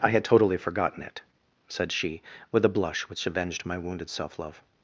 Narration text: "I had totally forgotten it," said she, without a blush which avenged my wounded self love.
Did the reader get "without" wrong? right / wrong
wrong